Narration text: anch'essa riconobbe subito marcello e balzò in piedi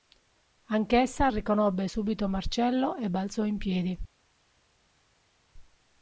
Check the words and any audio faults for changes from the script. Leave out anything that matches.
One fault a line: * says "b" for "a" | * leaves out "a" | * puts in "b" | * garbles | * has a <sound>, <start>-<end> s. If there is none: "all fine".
all fine